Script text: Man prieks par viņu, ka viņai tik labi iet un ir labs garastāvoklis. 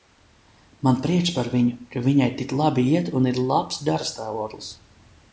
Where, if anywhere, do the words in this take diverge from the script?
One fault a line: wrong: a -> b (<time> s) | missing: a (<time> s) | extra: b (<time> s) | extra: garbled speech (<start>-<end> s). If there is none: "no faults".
no faults